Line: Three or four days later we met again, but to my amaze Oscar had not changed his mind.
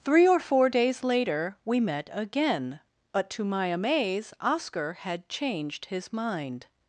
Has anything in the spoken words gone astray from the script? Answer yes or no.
yes